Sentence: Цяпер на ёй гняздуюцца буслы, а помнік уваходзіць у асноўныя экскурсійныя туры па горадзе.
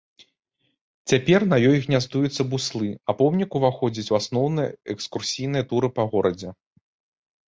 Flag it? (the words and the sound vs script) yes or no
no